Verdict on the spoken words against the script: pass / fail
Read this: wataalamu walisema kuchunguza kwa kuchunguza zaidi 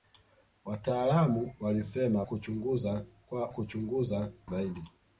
pass